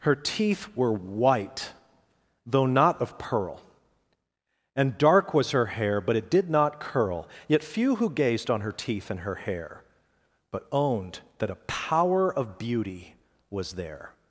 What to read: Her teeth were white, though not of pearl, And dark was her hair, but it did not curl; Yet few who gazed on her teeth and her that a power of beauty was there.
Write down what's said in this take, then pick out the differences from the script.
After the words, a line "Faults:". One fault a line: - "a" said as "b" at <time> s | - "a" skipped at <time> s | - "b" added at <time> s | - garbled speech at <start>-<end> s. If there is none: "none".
Her teeth were white, though not of pearl, And dark was her hair, but it did not curl; Yet few who gazed on her teeth and her hair, But owned that a power of beauty was there.
Faults:
- "hair But owned" added at 9.3 s